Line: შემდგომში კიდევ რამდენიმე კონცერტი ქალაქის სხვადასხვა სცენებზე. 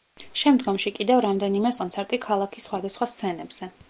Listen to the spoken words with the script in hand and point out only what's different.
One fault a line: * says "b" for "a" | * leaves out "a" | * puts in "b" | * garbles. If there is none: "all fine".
all fine